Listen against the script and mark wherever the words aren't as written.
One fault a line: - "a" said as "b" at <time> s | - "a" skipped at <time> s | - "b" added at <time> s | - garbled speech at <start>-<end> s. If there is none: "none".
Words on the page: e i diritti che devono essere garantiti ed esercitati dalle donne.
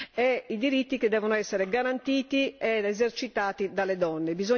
none